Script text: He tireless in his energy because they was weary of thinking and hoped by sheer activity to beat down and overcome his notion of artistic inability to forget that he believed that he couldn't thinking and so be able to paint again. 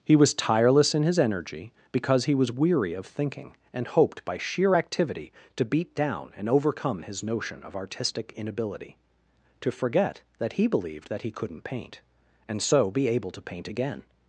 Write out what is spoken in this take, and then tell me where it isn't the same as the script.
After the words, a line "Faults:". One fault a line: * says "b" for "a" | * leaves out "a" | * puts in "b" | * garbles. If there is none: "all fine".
He was tireless in his energy because he was weary of thinking and hoped by sheer activity to beat down and overcome his notion of artistic inability to forget that he believed that he couldn't paint and so be able to paint again.
Faults:
* puts in "was"
* says "he" for "they"
* says "paint" for "thinking"